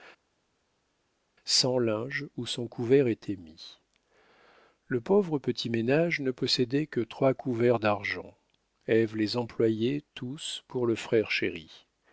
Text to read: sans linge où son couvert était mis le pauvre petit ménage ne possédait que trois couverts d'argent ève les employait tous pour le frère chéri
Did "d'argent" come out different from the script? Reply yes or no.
no